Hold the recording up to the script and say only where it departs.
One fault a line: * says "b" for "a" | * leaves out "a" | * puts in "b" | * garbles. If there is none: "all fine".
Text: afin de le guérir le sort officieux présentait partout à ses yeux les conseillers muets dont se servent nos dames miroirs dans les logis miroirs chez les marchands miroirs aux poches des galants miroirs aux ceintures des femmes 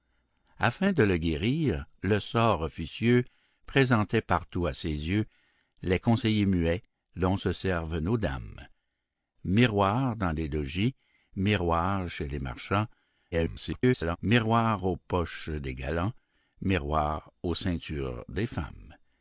* garbles